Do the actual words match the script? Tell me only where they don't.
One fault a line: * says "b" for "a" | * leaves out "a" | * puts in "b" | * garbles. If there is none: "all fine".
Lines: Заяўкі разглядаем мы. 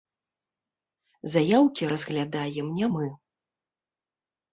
* puts in "не"